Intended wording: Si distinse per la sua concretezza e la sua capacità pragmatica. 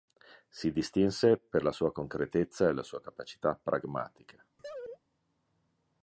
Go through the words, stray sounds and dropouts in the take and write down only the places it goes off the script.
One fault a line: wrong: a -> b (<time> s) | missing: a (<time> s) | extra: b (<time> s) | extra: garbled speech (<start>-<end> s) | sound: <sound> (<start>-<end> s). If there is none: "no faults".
sound: laugh (4.6-5.0 s)